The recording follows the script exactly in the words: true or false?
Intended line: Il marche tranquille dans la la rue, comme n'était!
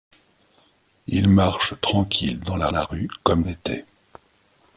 true